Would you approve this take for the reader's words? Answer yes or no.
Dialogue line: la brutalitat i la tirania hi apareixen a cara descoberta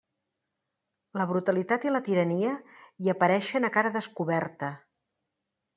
yes